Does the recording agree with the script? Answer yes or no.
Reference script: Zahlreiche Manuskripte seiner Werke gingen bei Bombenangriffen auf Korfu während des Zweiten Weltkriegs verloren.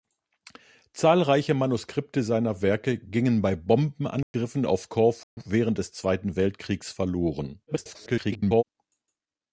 no